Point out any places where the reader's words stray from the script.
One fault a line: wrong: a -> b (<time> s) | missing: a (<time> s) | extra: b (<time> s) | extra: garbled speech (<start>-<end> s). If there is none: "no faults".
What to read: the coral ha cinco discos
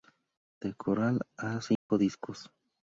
no faults